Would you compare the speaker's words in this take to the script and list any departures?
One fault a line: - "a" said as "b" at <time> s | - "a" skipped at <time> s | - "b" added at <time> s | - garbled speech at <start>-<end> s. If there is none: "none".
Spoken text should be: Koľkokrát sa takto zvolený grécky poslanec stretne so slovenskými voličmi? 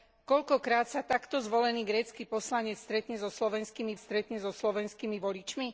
- "stretne so slovenskými" added at 4.0 s